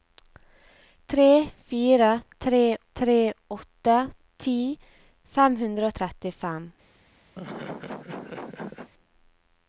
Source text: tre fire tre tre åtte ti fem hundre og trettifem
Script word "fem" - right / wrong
right